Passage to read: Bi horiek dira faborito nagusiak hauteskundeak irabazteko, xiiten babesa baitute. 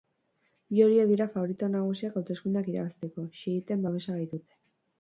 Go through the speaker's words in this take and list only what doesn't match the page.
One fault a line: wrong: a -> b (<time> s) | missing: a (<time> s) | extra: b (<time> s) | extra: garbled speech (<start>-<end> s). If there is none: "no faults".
no faults